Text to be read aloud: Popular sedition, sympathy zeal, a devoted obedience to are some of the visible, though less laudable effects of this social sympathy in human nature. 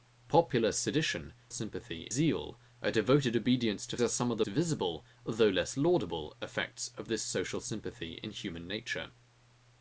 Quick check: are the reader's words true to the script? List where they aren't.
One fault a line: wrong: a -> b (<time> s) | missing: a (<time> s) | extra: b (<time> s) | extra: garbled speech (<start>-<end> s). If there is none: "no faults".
no faults